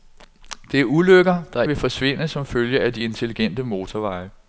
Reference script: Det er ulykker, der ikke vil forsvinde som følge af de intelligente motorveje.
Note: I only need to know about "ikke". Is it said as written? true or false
false